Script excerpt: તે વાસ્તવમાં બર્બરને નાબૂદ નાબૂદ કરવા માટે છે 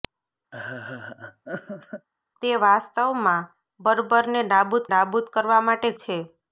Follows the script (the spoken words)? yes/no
yes